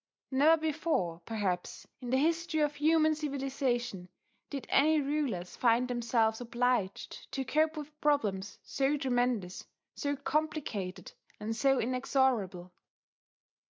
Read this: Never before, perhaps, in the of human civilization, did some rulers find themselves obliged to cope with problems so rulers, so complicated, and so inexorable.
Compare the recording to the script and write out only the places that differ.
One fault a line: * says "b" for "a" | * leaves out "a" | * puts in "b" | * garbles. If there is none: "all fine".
* puts in "history"
* says "any" for "some"
* says "tremendous" for "rulers"